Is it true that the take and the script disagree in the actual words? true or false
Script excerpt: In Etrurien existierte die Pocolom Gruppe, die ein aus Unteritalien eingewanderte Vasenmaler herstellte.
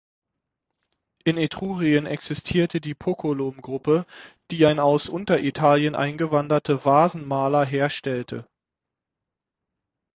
false